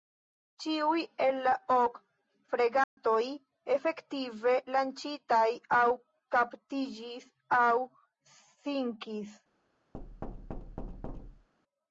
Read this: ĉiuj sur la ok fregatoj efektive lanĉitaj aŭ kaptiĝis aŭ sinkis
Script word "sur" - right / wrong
wrong